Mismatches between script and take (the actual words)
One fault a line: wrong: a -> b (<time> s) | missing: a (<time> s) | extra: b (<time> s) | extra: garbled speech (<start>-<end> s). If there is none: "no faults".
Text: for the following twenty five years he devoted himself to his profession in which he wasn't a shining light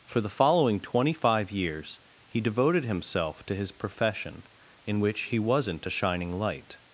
no faults